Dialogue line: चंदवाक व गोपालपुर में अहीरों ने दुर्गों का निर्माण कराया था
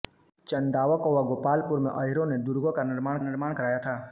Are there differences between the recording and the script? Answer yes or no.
yes